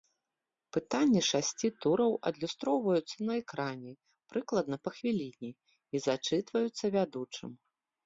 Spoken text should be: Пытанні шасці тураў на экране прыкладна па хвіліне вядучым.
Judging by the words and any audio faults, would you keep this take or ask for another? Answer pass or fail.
fail